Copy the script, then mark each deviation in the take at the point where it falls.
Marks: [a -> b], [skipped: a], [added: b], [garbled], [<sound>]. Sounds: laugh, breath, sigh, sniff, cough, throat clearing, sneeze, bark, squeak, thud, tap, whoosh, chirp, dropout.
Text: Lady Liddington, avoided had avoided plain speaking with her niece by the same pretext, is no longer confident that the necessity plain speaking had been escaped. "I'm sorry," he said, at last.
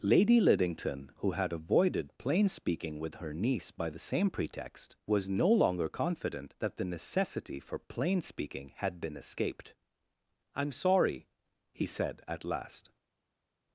Lady Liddington, [avoided -> who] had avoided plain speaking with her niece by the same pretext, [is -> was] no longer confident that the necessity [added: for] plain speaking had been escaped. "I'm sorry," he said, at last.